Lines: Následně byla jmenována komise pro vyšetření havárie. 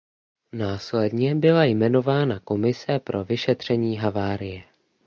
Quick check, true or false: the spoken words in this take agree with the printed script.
true